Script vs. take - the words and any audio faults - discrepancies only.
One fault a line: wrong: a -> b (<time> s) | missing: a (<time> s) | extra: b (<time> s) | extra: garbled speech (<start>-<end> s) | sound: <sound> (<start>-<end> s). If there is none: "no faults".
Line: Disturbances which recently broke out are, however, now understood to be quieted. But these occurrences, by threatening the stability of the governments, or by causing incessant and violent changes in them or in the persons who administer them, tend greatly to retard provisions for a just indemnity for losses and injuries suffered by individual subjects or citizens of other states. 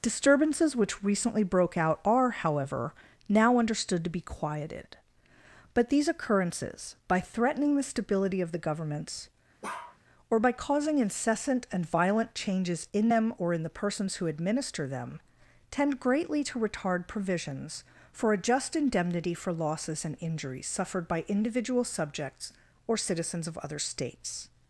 sound: bark (9.6-10.0 s)